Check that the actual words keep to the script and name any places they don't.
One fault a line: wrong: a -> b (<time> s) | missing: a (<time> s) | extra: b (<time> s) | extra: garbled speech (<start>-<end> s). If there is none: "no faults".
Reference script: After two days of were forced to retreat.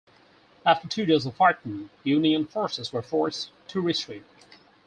extra: fighting Union forces (1.4 s)